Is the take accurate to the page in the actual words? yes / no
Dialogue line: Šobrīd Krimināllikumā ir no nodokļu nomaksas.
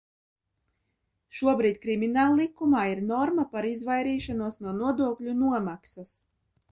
no